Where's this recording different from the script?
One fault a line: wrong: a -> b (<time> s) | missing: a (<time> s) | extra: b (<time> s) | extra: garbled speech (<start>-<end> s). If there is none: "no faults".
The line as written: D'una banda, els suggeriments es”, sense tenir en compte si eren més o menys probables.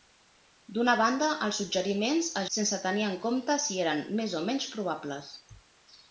no faults